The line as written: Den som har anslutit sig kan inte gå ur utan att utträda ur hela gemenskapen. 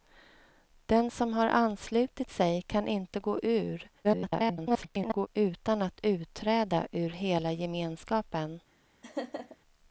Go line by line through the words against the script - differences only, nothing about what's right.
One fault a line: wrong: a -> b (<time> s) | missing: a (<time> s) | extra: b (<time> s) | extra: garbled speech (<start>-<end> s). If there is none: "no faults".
extra: garbled speech (4.0-5.3 s)